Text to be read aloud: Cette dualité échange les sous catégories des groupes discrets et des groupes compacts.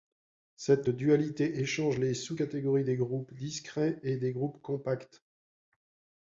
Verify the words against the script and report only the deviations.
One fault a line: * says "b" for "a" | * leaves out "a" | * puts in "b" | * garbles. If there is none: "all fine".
all fine